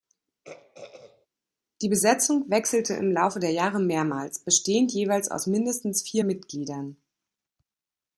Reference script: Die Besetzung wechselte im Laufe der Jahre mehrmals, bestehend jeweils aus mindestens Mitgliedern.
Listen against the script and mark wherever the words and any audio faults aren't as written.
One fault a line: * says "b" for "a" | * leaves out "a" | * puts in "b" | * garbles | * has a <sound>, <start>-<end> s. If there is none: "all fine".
* has a throat clearing, 0.4-1.3 s
* puts in "vier"